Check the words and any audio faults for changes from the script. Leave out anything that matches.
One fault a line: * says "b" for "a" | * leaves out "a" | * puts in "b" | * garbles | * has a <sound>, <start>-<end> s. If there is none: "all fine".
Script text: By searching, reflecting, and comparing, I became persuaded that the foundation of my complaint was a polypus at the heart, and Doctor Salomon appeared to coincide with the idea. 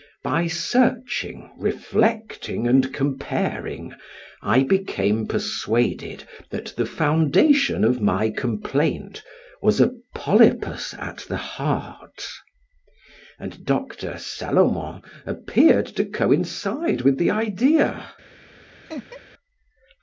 * has a laugh, 18.9-19.2 s